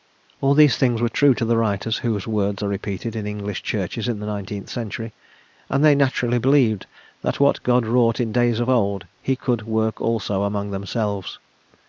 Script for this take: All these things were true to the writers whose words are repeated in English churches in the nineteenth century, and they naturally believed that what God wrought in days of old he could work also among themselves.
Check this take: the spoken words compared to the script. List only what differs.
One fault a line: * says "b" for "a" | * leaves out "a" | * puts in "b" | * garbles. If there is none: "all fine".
all fine